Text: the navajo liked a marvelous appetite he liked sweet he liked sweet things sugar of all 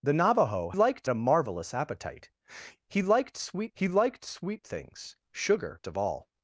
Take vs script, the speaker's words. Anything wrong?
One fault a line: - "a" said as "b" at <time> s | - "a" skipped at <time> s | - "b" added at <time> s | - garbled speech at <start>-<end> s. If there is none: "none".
none